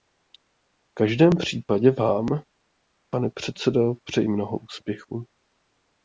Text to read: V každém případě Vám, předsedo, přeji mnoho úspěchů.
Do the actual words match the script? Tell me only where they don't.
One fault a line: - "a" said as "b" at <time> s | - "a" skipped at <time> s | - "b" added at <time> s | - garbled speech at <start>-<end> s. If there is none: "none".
- "pane" added at 3.1 s